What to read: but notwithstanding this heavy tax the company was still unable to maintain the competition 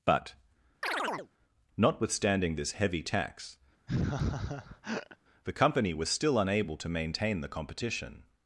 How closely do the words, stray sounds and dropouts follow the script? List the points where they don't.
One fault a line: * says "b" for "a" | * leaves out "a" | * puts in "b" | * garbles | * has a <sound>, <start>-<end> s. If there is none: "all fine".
* has a chirp, 0.8-1.3 s
* has a laugh, 3.9-5.2 s